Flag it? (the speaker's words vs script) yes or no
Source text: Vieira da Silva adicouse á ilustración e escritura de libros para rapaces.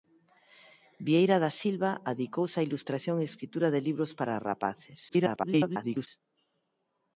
yes